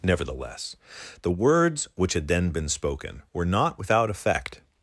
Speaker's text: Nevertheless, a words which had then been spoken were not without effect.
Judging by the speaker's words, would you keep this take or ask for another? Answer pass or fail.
fail